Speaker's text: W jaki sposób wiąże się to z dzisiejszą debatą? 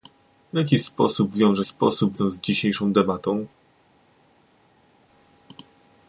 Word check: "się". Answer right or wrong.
wrong